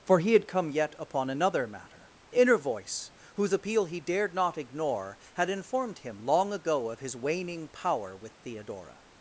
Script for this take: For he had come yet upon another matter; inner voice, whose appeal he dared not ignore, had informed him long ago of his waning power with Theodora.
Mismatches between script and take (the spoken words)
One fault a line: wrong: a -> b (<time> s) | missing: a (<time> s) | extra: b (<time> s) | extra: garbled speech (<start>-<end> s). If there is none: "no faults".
no faults